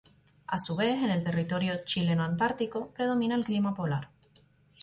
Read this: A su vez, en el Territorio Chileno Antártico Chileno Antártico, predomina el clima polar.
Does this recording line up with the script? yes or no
no